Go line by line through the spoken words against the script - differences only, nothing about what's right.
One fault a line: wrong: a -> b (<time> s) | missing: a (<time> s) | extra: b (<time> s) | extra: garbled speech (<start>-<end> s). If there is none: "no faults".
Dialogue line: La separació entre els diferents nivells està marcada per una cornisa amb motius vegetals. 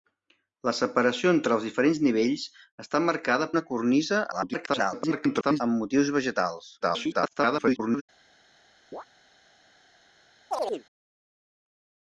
missing: per (3.5 s)
extra: garbled speech (4.3-5.6 s)
extra: garbled speech (6.8-8.0 s)